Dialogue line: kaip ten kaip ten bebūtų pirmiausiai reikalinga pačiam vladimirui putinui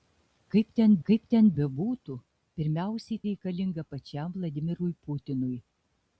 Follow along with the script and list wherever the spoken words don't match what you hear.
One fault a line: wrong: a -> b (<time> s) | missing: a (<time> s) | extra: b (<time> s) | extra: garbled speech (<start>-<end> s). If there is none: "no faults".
no faults